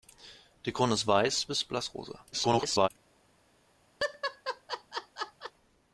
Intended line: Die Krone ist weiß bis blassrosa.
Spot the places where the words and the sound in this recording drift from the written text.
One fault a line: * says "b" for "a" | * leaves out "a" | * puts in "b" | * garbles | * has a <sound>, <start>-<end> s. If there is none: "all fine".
* garbles
* has a laugh, 4.0-5.5 s